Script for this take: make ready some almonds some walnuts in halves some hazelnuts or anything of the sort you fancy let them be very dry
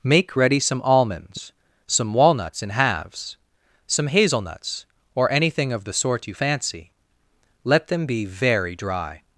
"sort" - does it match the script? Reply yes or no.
yes